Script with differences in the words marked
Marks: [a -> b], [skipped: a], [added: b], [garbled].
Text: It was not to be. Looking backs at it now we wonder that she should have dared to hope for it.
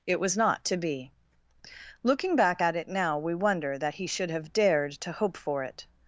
It was not to be. Looking [backs -> back] at it now we wonder that [she -> he] should have dared to hope for it.